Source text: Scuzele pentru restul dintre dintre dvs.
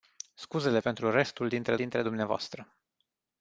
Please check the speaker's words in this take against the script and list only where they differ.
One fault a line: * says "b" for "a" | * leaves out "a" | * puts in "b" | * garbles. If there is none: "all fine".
all fine